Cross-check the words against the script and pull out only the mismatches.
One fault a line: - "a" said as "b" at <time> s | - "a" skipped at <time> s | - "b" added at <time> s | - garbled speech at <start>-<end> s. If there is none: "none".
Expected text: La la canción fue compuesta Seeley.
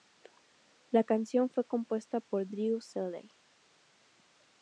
- "la" skipped at 1.0 s
- "por Drew" added at 2.2 s